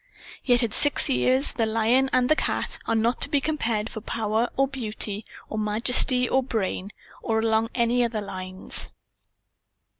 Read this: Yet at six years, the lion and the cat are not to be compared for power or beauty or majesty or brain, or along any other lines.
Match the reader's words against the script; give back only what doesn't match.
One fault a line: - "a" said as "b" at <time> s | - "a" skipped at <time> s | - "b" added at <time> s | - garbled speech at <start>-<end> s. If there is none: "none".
none